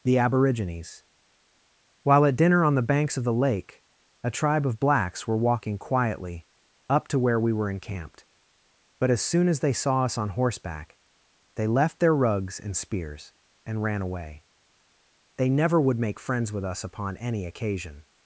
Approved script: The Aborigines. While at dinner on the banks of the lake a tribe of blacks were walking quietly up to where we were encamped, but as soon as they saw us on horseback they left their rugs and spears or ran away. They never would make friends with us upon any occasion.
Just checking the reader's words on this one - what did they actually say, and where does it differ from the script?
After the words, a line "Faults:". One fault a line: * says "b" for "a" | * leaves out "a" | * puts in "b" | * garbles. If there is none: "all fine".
The Aborigines. While at dinner on the banks of the lake a tribe of blacks were walking quietly up to where we were encamped, but as soon as they saw us on horseback they left their rugs and spears and ran away. They never would make friends with us upon any occasion.
Faults:
* says "and" for "or"